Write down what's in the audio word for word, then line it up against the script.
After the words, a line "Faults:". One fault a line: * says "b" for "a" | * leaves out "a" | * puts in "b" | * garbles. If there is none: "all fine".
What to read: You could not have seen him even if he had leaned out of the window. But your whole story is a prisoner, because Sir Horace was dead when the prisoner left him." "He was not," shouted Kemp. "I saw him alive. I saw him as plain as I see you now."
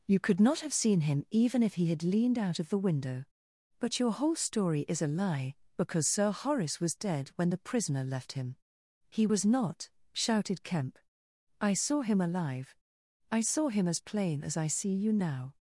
You could not have seen him even if he had leaned out of the window. But your whole story is a lie, because Sir Horace was dead when the prisoner left him." "He was not," shouted Kemp. "I saw him alive. I saw him as plain as I see you now."
Faults:
* says "lie" for "prisoner"